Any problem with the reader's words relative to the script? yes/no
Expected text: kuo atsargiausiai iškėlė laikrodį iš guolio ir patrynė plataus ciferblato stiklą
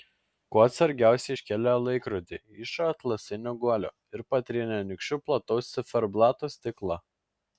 yes